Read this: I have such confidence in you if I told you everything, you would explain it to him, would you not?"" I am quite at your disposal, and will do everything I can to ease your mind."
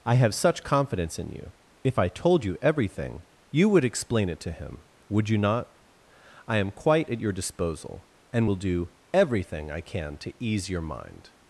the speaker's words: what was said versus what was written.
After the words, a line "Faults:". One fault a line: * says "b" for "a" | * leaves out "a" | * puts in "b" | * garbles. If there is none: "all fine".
I have such confidence in you if I told you everything, you would explain it to him, would you not?"" I am quite at your disposal, and will do everything I can to ease your mind."
Faults:
all fine